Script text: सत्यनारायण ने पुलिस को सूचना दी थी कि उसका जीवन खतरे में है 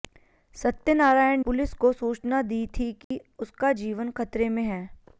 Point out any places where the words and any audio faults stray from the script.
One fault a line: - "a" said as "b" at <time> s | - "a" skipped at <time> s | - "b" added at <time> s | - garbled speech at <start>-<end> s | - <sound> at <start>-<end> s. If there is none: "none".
- "ने" skipped at 1.4 s
- dropout at 3.0-3.1 s